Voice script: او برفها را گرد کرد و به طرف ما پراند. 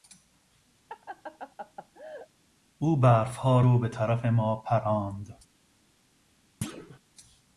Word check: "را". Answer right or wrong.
wrong